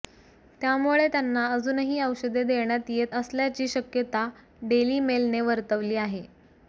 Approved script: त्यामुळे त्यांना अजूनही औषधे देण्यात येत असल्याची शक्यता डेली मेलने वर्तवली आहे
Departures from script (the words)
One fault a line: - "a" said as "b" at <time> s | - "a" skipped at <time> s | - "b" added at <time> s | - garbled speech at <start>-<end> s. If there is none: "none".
none